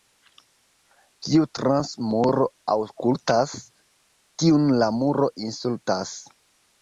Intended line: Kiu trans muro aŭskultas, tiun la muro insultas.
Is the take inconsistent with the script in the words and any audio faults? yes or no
no